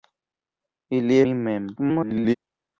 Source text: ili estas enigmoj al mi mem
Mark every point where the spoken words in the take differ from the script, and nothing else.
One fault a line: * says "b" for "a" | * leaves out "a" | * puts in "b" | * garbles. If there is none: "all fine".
* leaves out "estas enigmoj al"
* garbles